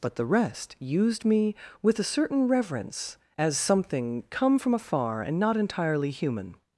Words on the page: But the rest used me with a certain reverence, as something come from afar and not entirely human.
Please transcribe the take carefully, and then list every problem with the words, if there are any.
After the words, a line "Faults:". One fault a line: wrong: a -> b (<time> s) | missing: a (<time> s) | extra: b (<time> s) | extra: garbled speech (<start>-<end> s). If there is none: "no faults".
But the rest used me with a certain reverence, as something come from afar and not entirely human.
Faults:
no faults